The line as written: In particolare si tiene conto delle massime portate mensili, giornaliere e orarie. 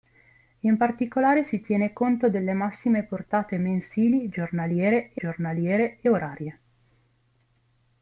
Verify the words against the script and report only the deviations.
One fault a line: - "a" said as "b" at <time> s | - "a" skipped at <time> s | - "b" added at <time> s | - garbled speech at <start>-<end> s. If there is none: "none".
- "giornaliere e" added at 5.1 s